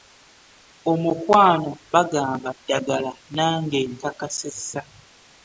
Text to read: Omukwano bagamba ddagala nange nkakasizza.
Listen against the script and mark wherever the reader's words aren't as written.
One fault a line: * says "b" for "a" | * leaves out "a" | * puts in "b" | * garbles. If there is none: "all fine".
all fine